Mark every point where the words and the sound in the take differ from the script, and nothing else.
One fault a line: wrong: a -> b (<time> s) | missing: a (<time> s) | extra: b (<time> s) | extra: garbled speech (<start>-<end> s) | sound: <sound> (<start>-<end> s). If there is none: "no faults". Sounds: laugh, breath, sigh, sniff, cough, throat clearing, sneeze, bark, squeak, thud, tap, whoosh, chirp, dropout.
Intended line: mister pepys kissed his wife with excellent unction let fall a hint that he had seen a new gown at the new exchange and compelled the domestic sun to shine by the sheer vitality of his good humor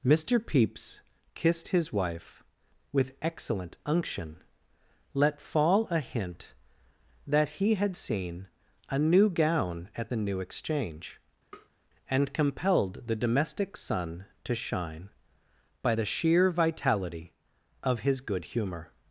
sound: tap (11.5-11.7 s)